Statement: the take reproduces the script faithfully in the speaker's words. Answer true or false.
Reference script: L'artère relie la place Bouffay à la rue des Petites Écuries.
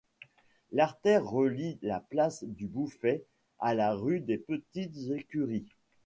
false